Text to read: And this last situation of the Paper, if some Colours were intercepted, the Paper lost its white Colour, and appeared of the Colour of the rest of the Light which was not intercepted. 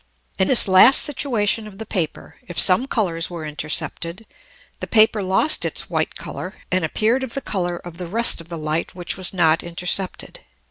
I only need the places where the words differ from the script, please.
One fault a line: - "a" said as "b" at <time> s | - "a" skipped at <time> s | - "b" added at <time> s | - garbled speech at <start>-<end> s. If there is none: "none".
none